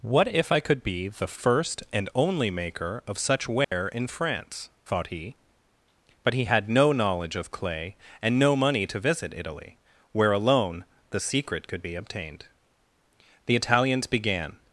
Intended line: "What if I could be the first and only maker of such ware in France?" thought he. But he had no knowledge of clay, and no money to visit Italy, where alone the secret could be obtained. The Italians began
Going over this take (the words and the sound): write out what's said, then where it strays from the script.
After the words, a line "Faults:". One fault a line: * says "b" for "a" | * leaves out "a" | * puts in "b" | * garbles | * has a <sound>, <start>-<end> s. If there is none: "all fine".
"What if I could be the first and only maker of such ware in France?" thought he. But he had no knowledge of clay, and no money to visit Italy, where alone the secret could be obtained. The Italians began
Faults:
* has a dropout, 3.6-3.7 s